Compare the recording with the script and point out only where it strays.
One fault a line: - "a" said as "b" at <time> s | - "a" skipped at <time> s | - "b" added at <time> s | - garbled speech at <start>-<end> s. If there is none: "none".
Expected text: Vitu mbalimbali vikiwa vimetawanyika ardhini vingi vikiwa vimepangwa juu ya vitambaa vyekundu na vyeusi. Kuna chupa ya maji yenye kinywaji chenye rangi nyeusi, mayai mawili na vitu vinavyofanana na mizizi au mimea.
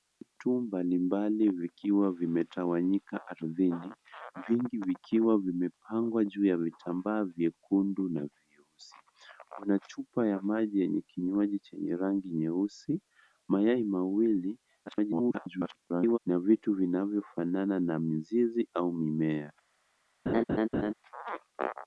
- garbled speech at 14.9-16.2 s